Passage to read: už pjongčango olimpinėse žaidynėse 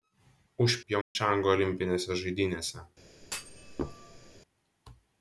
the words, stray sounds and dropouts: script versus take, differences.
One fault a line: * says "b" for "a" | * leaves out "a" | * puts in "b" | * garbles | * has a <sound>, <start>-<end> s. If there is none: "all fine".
* has a dropout, 1.0-1.2 s
* has a thud, 3.2-4.4 s